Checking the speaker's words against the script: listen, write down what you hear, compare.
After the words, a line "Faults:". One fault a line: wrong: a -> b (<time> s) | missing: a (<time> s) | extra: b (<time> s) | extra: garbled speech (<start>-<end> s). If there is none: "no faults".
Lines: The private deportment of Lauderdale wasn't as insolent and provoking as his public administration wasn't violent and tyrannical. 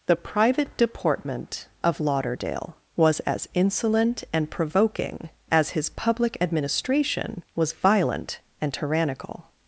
The private deportment of Lauderdale was as insolent and provoking as his public administration was violent and tyrannical.
Faults:
wrong: wasn't -> was (3.0 s)
wrong: wasn't -> was (7.5 s)